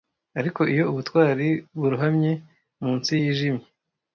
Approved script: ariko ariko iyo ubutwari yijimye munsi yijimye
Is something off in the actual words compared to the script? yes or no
yes